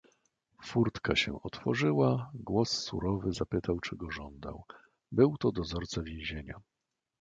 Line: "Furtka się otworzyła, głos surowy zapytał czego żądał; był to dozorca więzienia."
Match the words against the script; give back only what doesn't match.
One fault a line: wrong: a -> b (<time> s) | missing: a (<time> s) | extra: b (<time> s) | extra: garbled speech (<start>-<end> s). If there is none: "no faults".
no faults